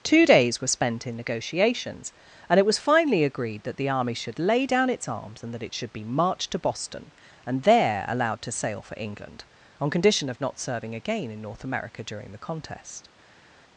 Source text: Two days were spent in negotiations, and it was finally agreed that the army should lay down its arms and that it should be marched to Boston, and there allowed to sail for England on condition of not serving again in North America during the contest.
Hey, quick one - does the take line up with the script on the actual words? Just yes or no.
yes